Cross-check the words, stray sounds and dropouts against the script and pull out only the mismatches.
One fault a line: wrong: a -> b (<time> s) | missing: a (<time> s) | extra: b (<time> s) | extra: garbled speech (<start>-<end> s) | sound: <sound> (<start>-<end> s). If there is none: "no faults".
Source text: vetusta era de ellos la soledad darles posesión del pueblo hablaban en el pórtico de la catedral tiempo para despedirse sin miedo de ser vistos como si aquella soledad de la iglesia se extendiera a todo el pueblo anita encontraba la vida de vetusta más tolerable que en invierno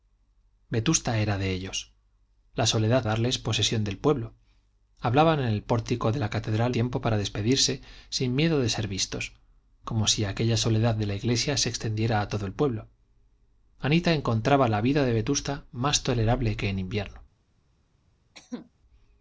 sound: cough (18.3-18.7 s)